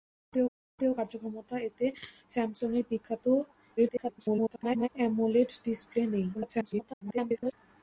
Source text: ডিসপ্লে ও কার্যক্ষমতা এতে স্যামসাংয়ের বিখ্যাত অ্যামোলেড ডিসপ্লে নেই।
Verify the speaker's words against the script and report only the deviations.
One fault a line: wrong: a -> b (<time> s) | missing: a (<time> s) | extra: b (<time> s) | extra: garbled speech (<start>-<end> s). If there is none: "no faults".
extra: ডিসপ্লে (0.5 s)
extra: garbled speech (3.8-4.9 s)
extra: garbled speech (6.3-7.5 s)